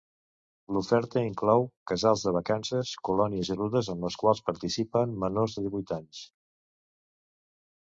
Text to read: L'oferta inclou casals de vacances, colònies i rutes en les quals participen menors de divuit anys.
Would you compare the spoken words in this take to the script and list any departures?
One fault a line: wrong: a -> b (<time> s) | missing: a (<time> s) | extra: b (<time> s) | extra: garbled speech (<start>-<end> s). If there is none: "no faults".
no faults